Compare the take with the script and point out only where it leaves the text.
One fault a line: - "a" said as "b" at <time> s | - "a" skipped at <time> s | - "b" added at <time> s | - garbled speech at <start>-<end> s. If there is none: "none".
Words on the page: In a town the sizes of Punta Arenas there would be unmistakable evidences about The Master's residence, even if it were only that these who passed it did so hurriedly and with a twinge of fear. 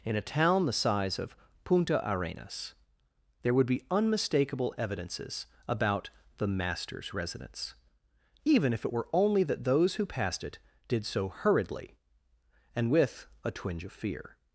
- "sizes" said as "size" at 0.7 s
- "these" said as "those" at 9.6 s